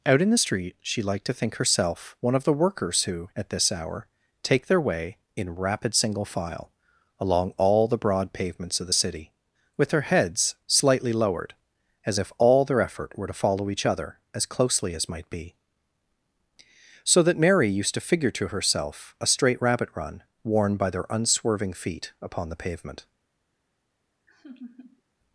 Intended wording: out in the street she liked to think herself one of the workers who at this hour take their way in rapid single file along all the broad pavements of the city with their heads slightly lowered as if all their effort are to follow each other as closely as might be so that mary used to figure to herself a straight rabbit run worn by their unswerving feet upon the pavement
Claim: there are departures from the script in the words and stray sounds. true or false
true